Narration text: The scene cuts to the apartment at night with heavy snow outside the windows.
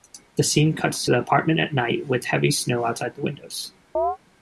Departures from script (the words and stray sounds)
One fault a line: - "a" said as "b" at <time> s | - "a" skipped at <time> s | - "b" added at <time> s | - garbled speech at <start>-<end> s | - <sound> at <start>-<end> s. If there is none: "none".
- chirp at 3.9-4.2 s